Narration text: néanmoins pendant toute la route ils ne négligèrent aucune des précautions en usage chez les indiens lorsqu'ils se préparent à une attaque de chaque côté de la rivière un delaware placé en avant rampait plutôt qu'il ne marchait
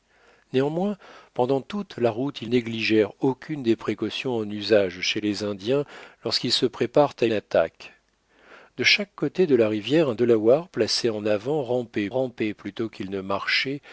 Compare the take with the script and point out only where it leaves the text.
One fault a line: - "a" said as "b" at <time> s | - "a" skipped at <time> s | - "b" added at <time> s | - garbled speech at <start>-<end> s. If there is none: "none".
- "ne" skipped at 2.5 s
- "une" skipped at 7.3 s
- "rampait" added at 12.1 s